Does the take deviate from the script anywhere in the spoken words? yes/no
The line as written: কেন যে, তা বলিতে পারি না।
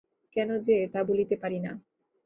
no